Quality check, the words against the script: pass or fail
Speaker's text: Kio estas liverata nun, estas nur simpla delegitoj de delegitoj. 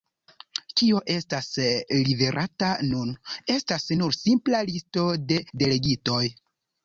fail